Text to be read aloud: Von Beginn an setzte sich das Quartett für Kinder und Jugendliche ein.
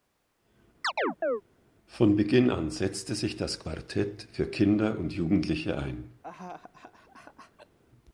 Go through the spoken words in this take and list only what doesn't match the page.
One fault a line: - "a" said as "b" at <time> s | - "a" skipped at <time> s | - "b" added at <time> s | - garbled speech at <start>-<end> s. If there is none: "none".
none